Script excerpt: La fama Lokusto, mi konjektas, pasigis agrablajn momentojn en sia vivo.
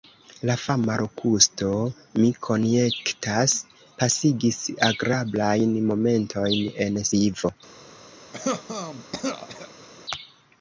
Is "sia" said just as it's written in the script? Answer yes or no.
no